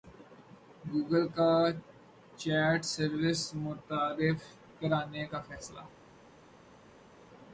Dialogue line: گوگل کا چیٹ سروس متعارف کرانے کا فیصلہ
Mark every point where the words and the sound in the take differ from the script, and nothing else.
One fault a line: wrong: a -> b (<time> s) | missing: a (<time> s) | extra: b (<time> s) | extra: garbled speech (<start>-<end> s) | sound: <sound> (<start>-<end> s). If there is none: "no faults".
no faults